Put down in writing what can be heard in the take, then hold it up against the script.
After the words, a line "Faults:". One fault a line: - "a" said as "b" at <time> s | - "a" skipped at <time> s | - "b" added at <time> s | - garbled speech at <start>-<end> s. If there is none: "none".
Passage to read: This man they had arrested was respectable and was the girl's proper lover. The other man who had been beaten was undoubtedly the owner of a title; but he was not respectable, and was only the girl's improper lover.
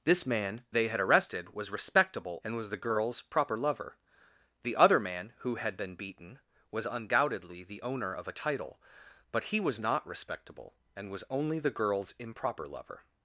This man they had arrested was respectable and was the girl's proper lover. The other man who had been beaten was undoubtedly the owner of a title; but he was not respectable, and was only the girl's improper lover.
Faults:
none